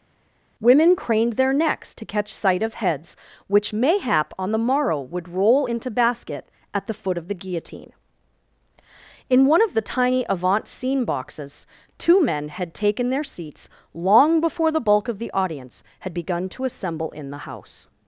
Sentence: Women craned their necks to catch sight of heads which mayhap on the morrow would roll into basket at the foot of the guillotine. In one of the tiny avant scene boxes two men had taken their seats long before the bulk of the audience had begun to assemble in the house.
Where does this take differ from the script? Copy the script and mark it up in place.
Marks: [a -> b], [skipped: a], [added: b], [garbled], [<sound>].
Women craned their necks to catch sight of heads which mayhap on the morrow would roll into basket at the foot of the guillotine. In one of the tiny avant scene boxes two men had taken their seats long before the bulk of the audience had begun to assemble in the house.